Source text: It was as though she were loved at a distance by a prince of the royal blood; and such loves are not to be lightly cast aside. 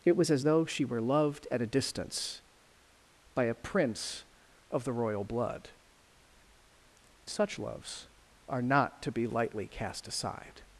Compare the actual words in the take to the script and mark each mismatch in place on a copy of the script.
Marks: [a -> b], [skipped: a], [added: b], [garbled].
It was as though she were loved at a distance by a prince of the royal blood; [skipped: and] such loves are not to be lightly cast aside.